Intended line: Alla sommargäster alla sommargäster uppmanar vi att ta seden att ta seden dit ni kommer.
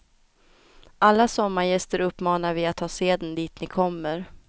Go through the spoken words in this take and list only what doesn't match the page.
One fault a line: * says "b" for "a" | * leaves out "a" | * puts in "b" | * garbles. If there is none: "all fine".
* leaves out "alla sommargäster"
* leaves out "att ta seden"